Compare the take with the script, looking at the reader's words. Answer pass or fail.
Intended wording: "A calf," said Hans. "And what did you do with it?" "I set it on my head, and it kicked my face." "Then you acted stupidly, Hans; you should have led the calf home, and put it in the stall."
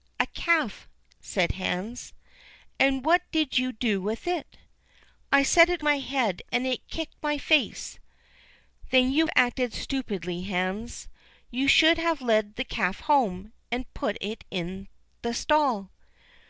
fail